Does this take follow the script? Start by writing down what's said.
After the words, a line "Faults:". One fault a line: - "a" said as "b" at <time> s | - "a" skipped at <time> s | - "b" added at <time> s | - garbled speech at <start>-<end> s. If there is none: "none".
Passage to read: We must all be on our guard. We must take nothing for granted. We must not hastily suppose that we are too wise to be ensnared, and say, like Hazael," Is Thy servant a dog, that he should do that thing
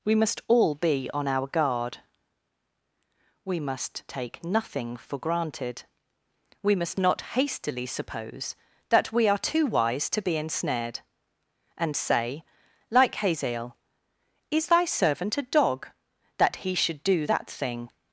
We must all be on our guard. We must take nothing for granted. We must not hastily suppose that we are too wise to be ensnared, and say, like Hazael," Is Thy servant a dog, that he should do that thing
Faults:
none